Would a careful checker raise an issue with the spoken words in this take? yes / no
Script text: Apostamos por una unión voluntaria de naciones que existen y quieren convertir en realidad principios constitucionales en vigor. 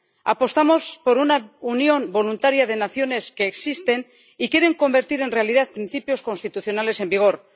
no